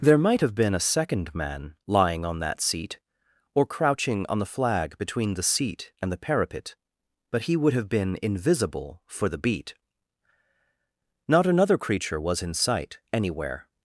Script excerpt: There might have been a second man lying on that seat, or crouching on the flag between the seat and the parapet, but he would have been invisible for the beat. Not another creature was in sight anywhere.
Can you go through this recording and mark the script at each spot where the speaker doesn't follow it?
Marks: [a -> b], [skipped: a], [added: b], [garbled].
There might have been a second man lying on that seat, or crouching on the flag between the seat and the parapet, but he would have been invisible for the beat. Not another creature was in sight anywhere.